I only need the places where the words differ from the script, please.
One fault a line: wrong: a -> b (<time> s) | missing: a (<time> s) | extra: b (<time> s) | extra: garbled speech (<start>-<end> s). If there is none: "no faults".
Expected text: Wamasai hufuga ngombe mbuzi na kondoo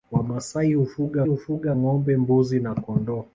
extra: hufuga (1.2 s)